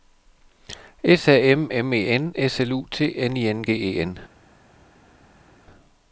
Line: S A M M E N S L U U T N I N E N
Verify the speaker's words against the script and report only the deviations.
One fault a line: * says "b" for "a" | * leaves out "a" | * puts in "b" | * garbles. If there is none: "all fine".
* leaves out "U"
* puts in "G"